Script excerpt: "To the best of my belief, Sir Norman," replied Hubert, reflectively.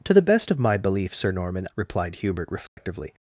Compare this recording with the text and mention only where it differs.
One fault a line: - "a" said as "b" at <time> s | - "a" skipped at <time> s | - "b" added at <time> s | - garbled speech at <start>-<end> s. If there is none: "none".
none